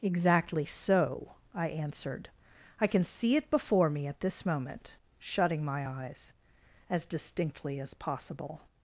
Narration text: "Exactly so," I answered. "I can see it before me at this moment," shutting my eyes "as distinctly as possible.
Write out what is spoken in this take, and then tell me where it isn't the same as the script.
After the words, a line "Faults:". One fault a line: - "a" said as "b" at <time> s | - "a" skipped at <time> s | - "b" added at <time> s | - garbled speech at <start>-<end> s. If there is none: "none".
"Exactly so," I answered. "I can see it before me at this moment," shutting my eyes "as distinctly as possible.
Faults:
none